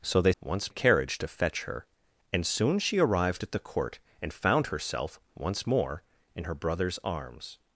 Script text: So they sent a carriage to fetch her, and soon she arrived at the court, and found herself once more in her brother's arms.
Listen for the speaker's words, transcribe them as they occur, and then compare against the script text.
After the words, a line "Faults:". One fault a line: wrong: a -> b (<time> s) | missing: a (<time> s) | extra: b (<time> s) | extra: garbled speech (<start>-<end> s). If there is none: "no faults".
So they once a carriage to fetch her, and soon she arrived at the court, and found herself once more in her brother's arms.
Faults:
wrong: sent -> once (0.4 s)